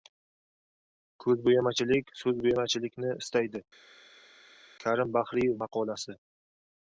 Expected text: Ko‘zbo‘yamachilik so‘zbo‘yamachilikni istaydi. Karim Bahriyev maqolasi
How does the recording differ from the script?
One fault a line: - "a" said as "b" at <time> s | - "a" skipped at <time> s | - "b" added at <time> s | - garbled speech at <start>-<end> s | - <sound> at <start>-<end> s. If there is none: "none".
none